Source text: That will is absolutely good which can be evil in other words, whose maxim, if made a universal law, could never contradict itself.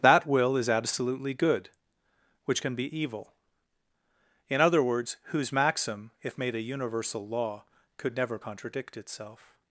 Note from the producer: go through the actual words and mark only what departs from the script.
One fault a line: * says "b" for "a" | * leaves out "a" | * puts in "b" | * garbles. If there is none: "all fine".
all fine